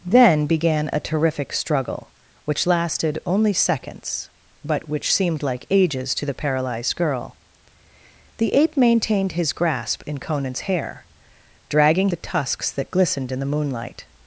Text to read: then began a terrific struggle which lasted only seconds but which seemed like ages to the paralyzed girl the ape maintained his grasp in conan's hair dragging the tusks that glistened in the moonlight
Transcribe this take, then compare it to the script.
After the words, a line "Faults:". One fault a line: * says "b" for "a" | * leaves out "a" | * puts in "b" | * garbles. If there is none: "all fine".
then began a terrific struggle which lasted only seconds but which seemed like ages to the paralyzed girl the ape maintained his grasp in conan's hair dragging the tusks that glistened in the moonlight
Faults:
all fine